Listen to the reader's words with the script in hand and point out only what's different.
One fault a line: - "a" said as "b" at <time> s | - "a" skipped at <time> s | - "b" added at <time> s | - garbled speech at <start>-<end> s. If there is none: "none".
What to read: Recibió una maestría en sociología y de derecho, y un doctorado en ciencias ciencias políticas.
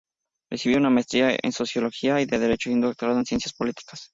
- "ciencias" skipped at 3.5 s